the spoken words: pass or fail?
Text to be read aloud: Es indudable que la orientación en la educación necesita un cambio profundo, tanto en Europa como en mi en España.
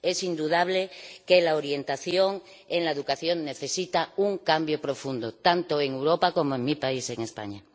fail